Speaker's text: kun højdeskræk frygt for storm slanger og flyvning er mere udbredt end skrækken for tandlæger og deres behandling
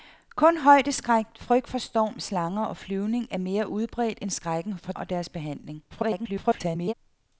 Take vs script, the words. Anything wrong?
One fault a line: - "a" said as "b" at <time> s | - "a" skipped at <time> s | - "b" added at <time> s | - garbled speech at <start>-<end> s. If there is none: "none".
- "tandlæger" skipped at 4.9 s
- garbled speech at 5.9-6.9 s